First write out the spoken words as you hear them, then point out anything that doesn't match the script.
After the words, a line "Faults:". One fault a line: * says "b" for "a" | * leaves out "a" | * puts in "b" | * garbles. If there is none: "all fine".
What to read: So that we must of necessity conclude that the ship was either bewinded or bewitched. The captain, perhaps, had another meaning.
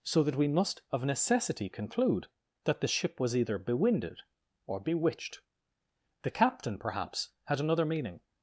So that we must of necessity conclude that the ship was either bewinded or bewitched. The captain, perhaps, had another meaning.
Faults:
all fine